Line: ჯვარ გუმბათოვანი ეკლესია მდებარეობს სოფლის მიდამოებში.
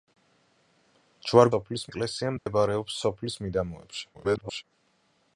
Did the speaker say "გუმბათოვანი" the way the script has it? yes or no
no